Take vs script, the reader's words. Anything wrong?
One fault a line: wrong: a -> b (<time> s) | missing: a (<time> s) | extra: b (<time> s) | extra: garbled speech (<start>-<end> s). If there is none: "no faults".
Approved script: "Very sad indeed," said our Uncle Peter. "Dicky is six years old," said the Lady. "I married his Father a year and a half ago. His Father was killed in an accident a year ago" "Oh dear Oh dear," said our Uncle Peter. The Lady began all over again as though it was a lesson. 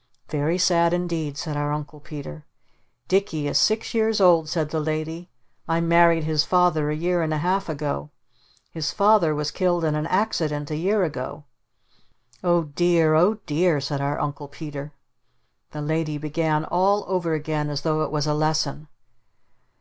no faults